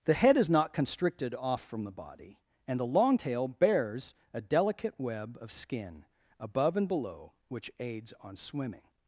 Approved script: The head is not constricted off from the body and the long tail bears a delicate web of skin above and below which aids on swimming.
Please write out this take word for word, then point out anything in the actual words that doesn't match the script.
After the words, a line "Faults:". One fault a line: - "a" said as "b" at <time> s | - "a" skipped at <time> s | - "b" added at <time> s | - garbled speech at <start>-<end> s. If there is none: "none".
The head is not constricted off from the body and the long tail bears a delicate web of skin above and below which aids on swimming.
Faults:
none